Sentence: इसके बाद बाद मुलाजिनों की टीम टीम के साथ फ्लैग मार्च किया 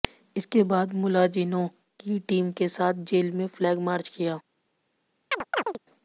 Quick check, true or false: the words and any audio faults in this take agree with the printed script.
false